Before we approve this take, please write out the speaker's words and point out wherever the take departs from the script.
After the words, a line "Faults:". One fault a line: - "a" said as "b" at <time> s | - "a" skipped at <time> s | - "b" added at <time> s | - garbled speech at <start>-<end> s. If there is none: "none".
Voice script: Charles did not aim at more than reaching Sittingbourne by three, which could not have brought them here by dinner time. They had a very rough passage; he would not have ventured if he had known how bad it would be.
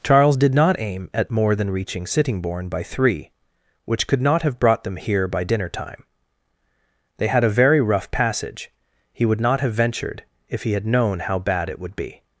Charles did not aim at more than reaching Sittingbourne by three, which could not have brought them here by dinner time. They had a very rough passage; he would not have ventured if he had known how bad it would be.
Faults:
none